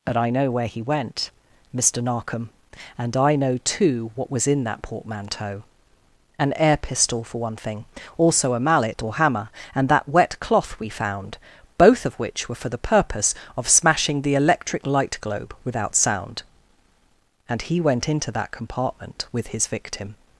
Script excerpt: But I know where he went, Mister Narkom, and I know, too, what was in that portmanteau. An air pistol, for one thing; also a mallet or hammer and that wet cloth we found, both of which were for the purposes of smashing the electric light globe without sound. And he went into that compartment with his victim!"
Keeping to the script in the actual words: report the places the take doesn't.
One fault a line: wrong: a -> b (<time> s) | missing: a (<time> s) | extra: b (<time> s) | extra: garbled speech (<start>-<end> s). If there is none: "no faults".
wrong: purposes -> purpose (12.8 s)